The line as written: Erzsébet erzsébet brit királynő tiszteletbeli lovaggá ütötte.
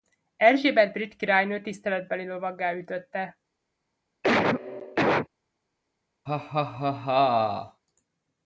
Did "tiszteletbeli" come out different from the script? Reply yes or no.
no